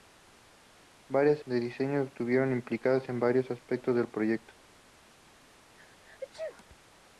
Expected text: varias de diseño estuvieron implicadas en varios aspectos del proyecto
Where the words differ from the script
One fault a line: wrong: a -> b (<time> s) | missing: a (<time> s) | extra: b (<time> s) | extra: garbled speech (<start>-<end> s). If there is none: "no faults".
no faults